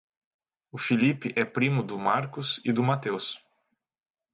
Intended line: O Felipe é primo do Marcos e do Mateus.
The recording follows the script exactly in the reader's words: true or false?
true